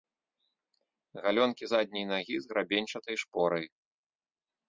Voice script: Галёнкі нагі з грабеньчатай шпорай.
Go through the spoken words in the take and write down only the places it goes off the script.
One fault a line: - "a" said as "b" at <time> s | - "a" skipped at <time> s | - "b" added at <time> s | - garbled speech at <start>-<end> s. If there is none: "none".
- "задняй" added at 1.7 s